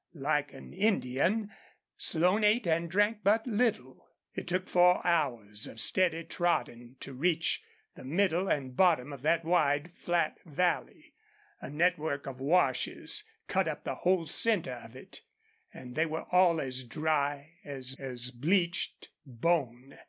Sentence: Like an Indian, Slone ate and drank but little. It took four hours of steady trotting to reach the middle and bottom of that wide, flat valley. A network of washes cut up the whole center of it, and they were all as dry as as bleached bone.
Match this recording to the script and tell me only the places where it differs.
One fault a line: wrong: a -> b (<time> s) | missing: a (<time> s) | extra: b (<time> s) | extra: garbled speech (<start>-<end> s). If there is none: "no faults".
no faults